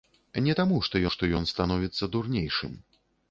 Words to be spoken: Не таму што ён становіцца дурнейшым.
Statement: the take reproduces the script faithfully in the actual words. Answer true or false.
false